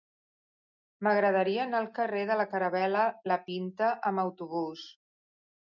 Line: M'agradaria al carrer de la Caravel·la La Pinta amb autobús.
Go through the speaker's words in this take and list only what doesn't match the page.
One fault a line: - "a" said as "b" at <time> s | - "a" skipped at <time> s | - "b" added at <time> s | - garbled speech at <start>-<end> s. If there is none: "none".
- "anar" added at 1.6 s